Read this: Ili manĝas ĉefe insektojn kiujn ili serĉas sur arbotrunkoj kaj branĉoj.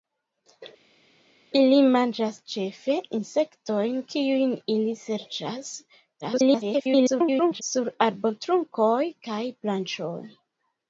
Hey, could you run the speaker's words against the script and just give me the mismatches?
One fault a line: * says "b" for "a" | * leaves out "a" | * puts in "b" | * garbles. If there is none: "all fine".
* garbles